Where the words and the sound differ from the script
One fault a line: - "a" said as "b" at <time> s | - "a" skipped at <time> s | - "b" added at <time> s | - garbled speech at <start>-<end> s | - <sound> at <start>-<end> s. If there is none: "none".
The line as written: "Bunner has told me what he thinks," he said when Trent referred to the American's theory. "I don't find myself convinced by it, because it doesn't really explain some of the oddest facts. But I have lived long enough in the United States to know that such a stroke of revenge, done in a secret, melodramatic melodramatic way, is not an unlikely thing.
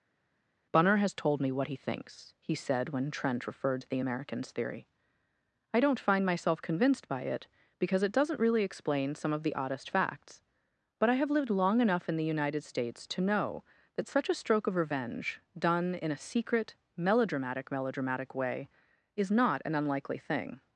none